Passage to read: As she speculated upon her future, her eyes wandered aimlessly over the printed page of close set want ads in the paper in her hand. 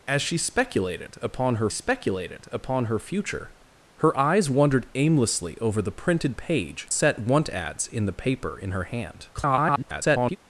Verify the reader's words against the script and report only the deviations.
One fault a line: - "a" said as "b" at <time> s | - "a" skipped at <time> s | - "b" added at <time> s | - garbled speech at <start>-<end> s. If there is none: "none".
- "speculated upon her" added at 1.7 s
- "of close" skipped at 6.9 s
- garbled speech at 9.3-10.4 s